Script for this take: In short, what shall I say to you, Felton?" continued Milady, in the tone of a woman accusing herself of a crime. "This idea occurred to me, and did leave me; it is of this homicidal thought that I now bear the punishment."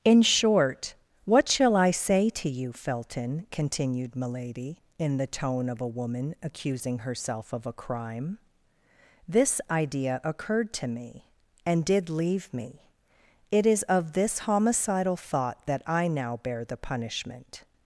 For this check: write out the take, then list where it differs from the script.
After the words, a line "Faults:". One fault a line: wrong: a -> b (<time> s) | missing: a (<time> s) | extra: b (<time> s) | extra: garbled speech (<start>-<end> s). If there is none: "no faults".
In short, what shall I say to you, Felton?" continued Milady, in the tone of a woman accusing herself of a crime. "This idea occurred to me, and did leave me; it is of this homicidal thought that I now bear the punishment."
Faults:
no faults